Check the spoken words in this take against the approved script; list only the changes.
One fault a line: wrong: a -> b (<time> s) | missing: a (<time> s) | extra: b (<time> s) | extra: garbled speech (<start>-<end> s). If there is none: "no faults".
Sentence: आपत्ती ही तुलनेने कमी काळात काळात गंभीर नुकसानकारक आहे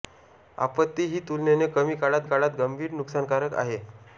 no faults